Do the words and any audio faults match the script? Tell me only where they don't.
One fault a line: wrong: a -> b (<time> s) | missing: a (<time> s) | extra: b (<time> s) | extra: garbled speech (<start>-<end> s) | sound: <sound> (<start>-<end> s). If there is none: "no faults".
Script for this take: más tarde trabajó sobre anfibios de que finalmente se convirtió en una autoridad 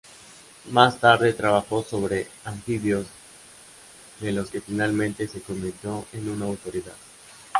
extra: los (4.3 s)